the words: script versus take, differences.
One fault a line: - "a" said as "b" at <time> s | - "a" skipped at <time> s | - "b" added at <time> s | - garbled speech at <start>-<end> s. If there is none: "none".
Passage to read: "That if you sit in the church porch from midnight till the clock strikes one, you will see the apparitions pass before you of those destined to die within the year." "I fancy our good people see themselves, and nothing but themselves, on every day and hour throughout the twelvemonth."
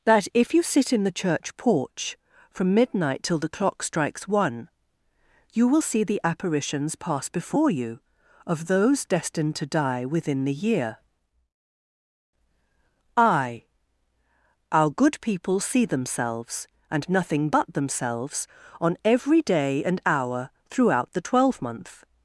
- "fancy" skipped at 13.6 s